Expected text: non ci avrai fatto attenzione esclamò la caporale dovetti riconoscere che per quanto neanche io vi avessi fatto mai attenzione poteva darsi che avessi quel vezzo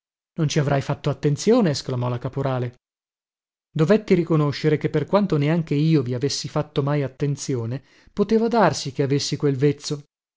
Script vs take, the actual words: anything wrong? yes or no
no